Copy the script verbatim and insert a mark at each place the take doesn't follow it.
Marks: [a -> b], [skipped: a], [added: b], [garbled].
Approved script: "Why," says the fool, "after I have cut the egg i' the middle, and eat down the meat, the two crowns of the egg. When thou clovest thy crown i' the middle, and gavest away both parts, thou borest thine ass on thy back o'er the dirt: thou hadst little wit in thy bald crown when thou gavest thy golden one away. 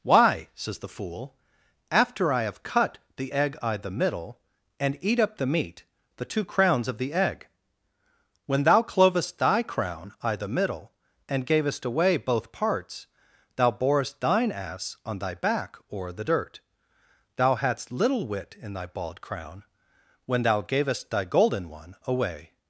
"Why," says the fool, "after I have cut the egg i' the middle, and eat [down -> up] the meat, the two crowns of the egg. When thou clovest thy crown i' the middle, and gavest away both parts, thou borest thine ass on thy back o'er the dirt: thou hadst little wit in thy bald crown when thou gavest thy golden one away.